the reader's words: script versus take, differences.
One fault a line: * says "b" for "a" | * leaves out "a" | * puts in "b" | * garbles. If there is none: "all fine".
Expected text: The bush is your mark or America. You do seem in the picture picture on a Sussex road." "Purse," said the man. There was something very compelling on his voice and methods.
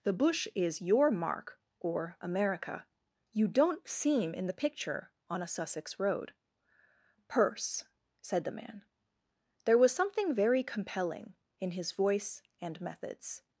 * says "don't" for "do"
* leaves out "picture"
* says "in" for "on"